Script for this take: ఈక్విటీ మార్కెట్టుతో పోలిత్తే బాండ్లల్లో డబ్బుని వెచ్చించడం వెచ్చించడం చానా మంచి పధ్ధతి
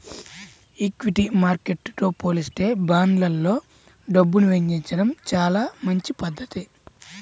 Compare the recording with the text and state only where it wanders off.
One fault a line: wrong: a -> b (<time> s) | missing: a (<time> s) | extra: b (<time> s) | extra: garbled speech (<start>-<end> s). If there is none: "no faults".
missing: వెచ్చించడం (5.1 s)